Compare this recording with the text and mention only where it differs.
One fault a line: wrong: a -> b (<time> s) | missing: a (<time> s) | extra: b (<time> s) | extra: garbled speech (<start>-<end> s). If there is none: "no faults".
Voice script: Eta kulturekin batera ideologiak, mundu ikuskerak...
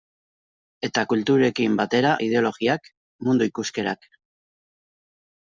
no faults